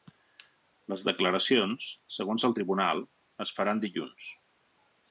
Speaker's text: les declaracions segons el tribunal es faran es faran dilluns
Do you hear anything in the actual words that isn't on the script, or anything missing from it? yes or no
yes